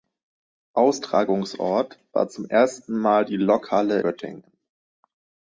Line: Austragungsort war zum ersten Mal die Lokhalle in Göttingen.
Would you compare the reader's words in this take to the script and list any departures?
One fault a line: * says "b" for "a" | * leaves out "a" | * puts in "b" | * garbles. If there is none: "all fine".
* leaves out "in"